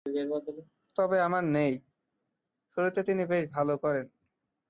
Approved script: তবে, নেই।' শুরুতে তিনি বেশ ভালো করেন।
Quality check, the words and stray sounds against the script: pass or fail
fail